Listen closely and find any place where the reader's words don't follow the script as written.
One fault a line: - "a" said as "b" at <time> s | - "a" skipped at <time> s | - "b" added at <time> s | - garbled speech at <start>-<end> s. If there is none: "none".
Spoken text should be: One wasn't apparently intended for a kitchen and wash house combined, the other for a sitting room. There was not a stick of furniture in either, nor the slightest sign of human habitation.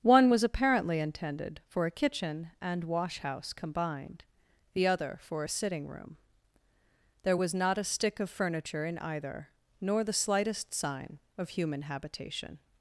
- "wasn't" said as "was" at 0.3 s